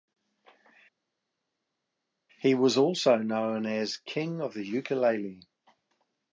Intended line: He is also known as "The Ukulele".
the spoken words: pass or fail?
fail